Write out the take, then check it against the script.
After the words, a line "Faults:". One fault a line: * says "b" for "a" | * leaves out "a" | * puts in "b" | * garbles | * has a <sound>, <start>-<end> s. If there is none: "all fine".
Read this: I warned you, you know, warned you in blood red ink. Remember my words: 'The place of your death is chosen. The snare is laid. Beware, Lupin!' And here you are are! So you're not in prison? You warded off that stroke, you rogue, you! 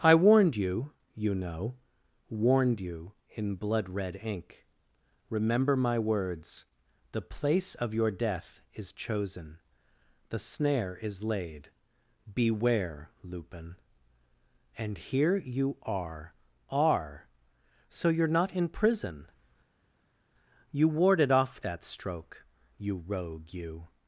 I warned you, you know, warned you in blood red ink. Remember my words: 'The place of your death is chosen. The snare is laid. Beware, Lupin!' And here you are are! So you're not in prison? You warded off that stroke, you rogue, you!
Faults:
all fine